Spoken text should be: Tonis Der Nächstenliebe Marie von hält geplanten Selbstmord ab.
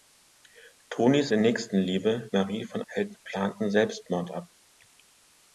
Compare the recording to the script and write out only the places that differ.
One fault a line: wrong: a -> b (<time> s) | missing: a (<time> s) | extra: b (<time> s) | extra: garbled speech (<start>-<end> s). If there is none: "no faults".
no faults